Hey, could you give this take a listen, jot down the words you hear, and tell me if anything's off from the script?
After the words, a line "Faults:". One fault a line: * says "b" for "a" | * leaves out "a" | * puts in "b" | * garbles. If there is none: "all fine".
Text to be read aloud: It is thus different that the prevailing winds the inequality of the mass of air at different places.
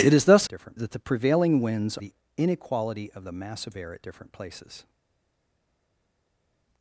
It is thus different that the prevailing winds the inequality of the mass of air at different places.
Faults:
all fine